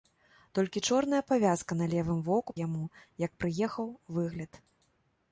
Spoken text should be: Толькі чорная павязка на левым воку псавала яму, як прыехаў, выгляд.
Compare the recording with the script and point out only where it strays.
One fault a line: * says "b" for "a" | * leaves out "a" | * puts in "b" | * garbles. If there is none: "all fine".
* leaves out "псавала"